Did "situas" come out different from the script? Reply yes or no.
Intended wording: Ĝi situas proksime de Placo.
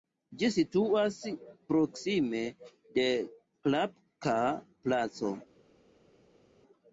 no